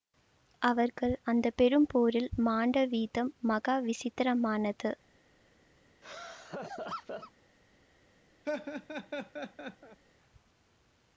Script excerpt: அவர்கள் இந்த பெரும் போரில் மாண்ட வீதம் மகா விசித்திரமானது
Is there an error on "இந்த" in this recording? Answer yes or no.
yes